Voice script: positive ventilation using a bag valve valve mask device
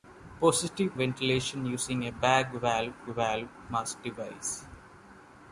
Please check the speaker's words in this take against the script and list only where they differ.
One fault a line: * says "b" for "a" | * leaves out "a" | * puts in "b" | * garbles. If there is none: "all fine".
all fine